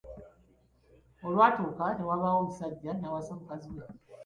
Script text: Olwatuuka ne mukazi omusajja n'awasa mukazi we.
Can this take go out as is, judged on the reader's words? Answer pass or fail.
fail